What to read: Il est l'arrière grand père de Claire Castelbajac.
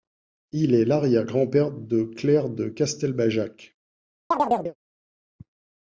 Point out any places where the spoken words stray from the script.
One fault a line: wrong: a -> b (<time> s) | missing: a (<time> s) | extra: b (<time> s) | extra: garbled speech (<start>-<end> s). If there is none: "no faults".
extra: de (2.5 s)